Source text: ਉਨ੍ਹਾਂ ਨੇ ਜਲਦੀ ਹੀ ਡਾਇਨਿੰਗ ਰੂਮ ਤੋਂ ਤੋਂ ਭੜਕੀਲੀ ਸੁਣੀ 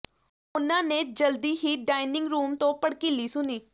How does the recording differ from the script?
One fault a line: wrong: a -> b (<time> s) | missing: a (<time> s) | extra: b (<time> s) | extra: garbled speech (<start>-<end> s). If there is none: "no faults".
missing: ਤੋਂ (2.7 s)